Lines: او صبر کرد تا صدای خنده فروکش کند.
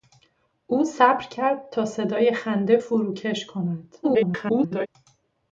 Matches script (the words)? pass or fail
fail